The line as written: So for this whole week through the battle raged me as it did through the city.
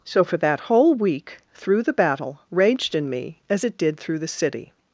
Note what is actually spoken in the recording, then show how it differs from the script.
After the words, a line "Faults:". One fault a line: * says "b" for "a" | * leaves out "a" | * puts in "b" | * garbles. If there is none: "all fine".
So for that whole week through the battle raged in me as it did through the city.
Faults:
* says "that" for "this"
* puts in "in"